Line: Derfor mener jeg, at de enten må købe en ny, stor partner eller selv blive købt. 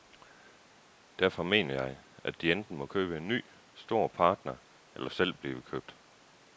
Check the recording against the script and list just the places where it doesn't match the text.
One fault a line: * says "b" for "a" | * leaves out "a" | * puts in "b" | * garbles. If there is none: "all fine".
all fine